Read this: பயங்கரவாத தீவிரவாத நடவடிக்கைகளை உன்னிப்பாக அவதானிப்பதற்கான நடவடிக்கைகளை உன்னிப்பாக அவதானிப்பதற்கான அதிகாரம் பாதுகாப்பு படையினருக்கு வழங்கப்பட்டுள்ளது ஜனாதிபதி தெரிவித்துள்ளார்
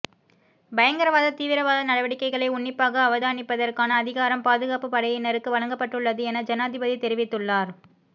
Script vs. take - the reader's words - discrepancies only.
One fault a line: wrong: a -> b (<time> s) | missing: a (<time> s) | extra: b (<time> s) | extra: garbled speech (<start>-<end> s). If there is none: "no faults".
missing: நடவடிக்கைகளை உன்னிப்பாக அவதானிப்பதற்கான (4.0 s)
extra: என (6.2 s)